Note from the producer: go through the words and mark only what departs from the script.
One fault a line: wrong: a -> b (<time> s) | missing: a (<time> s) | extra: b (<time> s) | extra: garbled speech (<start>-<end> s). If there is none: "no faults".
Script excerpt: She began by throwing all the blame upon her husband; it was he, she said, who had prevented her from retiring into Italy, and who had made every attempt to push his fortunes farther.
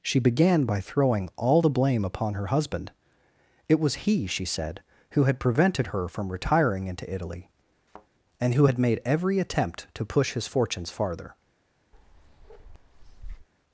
no faults